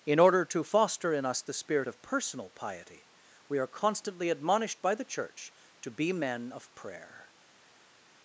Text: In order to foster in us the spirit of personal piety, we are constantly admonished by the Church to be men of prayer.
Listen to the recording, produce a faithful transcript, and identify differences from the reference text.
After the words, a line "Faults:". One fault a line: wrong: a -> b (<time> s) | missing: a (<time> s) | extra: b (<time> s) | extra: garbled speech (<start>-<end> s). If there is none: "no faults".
In order to foster in us the spirit of personal piety, we are constantly admonished by the Church to be men of prayer.
Faults:
no faults